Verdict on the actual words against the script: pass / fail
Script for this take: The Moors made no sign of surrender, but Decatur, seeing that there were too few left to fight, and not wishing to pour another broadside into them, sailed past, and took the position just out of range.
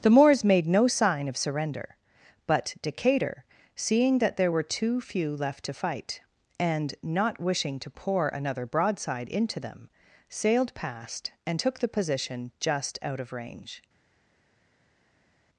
pass